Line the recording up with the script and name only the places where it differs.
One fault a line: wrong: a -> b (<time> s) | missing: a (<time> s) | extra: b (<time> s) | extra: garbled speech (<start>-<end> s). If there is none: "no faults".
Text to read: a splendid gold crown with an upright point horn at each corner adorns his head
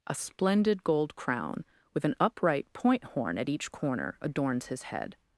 no faults